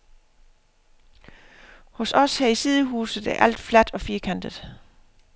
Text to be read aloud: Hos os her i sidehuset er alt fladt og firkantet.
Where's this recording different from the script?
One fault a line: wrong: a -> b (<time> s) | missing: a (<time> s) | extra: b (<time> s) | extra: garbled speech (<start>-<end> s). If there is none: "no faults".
no faults